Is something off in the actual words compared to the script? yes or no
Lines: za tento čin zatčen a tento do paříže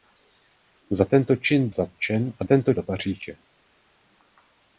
no